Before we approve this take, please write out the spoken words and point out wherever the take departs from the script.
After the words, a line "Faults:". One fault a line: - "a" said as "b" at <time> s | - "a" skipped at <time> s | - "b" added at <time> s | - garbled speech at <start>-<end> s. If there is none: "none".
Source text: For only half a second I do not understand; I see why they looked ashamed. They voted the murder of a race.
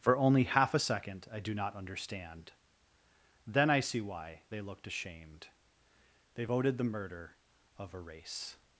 For only half a second I do not understand; then I see why they looked ashamed. They voted the murder of a race.
Faults:
- "then" added at 3.5 s